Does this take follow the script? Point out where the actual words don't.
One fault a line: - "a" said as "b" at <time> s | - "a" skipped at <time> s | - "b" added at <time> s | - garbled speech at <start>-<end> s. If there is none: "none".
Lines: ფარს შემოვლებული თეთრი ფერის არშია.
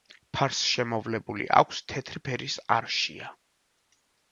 - "აქვს" added at 1.6 s